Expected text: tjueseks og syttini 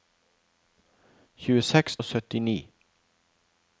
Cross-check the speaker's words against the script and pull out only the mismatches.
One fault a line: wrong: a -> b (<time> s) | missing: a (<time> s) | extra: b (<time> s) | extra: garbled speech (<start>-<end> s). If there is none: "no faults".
no faults